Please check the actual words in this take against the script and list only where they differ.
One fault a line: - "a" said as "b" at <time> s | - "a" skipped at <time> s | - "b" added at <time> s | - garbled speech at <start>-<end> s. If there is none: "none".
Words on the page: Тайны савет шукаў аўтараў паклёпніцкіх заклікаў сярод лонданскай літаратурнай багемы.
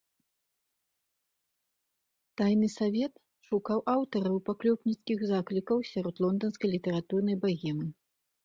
none